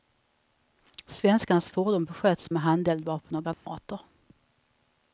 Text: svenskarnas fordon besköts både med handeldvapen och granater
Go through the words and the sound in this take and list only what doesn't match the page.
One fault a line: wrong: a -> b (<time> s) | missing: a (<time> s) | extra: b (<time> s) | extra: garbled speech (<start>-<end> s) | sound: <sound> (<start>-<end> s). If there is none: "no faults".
missing: både (2.5 s)
sound: dropout (3.5-3.7 s)